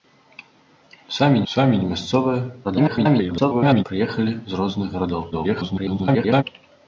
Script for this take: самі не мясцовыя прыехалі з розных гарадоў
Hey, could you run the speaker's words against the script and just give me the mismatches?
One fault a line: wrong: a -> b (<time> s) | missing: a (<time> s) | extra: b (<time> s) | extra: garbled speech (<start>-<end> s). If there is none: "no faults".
extra: самі (1.5 s)
extra: garbled speech (2.6-3.8 s)
extra: garbled speech (5.3-6.4 s)